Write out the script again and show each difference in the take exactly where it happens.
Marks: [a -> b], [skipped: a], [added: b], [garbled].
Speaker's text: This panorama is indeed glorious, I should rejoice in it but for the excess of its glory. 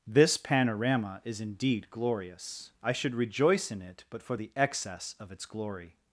This panorama is indeed glorious, I should rejoice in it but for the excess of its glory.